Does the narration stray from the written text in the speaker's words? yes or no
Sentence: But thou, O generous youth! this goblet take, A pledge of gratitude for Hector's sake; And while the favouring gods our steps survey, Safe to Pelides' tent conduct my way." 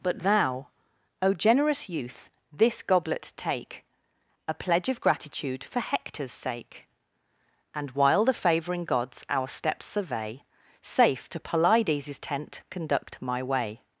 no